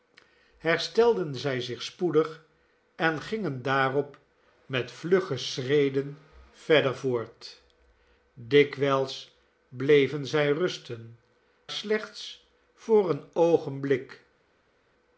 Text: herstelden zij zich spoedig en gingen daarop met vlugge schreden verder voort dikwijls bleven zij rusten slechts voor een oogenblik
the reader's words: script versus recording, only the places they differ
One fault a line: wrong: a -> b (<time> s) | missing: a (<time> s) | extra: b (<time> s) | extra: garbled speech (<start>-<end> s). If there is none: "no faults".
no faults